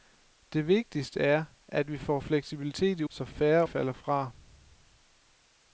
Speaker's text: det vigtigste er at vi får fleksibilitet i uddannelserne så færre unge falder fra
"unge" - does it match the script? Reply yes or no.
no